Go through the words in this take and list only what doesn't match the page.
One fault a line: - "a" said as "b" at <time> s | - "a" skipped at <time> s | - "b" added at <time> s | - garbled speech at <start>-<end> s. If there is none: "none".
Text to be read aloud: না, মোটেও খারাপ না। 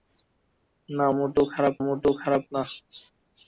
- "মোটেও খারাপ" added at 1.8 s